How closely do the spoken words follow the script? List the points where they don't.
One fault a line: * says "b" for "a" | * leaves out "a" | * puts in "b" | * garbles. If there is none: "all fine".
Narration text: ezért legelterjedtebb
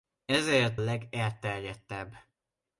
all fine